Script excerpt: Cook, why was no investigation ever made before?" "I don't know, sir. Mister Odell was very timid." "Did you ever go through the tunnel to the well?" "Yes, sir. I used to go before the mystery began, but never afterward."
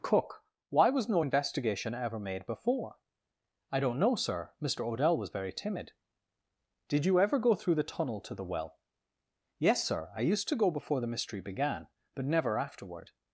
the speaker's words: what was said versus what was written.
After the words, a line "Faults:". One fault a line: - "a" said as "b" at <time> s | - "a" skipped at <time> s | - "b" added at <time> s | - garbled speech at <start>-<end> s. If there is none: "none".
Cook, why was no investigation ever made before?" "I don't know, sir. Mister Odell was very timid." "Did you ever go through the tunnel to the well?" "Yes, sir. I used to go before the mystery began, but never afterward."
Faults:
none